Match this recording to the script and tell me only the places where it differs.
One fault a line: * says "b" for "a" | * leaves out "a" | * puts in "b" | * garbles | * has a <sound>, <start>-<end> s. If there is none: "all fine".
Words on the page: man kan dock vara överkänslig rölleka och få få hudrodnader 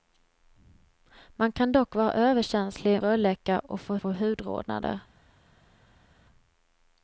all fine